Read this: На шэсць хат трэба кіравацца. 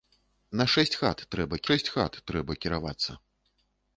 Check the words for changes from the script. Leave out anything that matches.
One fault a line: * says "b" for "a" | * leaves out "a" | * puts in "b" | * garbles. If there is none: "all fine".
* puts in "шэсць хат трэба"